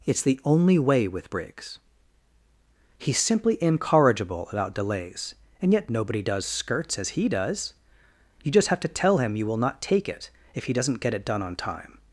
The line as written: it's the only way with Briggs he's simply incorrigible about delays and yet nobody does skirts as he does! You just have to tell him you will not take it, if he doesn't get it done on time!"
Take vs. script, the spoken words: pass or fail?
pass